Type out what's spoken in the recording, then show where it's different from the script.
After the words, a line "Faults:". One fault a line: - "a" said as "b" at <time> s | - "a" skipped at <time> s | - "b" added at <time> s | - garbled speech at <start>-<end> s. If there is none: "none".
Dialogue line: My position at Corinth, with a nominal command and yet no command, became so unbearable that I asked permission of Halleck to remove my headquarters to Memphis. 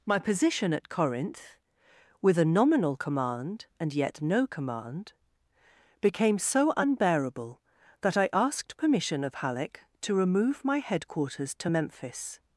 My position at Corinth, with a nominal command and yet no command, became so unbearable that I asked permission of Halleck to remove my headquarters to Memphis.
Faults:
none